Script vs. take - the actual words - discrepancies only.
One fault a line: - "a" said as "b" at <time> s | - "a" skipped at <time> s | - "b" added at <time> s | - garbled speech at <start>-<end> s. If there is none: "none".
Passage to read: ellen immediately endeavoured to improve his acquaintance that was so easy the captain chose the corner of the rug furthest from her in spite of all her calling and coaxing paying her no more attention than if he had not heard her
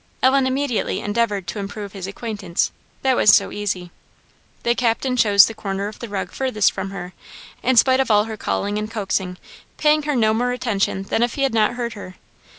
none